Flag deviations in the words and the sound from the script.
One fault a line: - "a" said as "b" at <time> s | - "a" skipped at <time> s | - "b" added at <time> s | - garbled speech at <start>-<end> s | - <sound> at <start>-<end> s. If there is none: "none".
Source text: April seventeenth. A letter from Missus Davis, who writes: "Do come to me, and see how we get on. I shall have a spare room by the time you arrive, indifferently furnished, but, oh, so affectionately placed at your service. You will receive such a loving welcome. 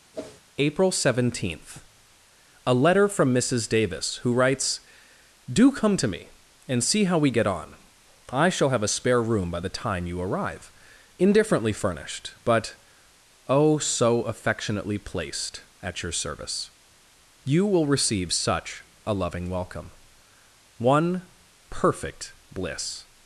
- whoosh at 0.1-0.4 s
- "One perfect bliss" added at 20.8 s